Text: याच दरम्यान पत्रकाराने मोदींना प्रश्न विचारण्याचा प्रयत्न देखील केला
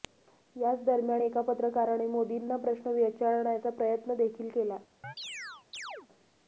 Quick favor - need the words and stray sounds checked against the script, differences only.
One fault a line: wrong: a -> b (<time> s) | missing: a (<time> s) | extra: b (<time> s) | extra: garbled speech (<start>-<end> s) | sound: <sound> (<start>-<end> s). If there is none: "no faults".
extra: एका (1.2 s)
sound: chirp (5.0-6.1 s)